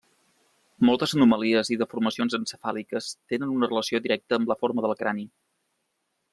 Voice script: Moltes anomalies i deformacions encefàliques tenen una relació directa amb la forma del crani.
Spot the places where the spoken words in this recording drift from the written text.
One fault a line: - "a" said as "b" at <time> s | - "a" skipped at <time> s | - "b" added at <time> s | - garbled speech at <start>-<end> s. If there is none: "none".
none